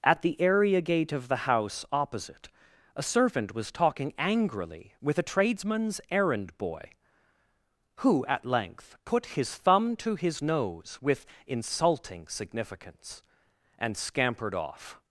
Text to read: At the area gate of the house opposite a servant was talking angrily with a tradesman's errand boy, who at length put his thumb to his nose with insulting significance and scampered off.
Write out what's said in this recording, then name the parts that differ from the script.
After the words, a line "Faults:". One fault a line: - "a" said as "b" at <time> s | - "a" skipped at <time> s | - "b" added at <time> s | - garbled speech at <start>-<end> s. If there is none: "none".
At the area gate of the house opposite a servant was talking angrily with a tradesman's errand boy, who at length put his thumb to his nose with insulting significance and scampered off.
Faults:
none